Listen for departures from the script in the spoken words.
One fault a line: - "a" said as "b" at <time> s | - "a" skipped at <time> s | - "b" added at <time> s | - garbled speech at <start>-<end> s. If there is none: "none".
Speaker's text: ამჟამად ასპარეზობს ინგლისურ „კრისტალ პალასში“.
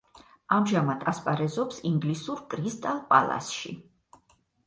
none